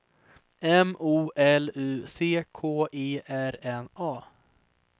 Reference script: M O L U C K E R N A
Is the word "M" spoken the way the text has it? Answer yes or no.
yes